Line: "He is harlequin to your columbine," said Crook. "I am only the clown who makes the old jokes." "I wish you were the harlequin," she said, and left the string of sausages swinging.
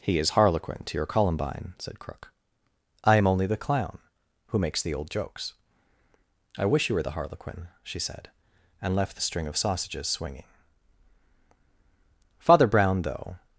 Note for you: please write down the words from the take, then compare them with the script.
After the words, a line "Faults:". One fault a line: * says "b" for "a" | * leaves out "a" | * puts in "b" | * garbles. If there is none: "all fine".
"He is harlequin to your columbine," said Crook. "I am only the clown who makes the old jokes." "I wish you were the harlequin," she said, and left the string of sausages swinging. Father Brown, though
Faults:
* puts in "Father Brown though"